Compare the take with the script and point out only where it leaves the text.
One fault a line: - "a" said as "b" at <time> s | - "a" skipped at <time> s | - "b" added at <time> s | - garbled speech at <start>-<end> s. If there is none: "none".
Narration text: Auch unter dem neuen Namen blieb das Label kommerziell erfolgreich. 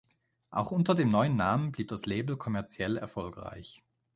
none